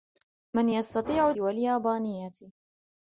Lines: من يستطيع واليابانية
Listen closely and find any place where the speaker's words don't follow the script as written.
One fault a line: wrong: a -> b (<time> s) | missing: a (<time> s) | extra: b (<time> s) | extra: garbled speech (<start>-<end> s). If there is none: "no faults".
no faults